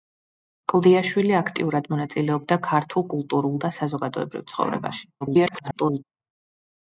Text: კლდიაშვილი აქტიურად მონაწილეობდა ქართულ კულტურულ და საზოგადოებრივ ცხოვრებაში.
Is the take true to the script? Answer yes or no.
no